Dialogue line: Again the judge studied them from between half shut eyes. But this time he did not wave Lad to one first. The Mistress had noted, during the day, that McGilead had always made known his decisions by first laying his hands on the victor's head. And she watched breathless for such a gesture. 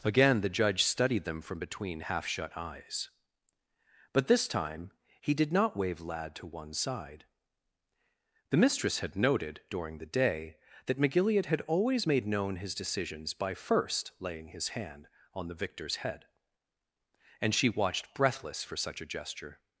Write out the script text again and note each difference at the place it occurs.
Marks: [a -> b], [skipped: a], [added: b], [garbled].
Again the judge studied them from between half shut eyes. But this time he did not wave Lad to one [first. -> side] The Mistress had noted, during the day, that McGilead had always made known his decisions by first laying his [hands -> hand] on the victor's head. And she watched breathless for such a gesture.